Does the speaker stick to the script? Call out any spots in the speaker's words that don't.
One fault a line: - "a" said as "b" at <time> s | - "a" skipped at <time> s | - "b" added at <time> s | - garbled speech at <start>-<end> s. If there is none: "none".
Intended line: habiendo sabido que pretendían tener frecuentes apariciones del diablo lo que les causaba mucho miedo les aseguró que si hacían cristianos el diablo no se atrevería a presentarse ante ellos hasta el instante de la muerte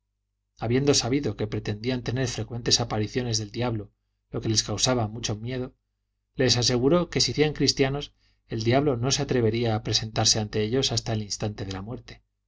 none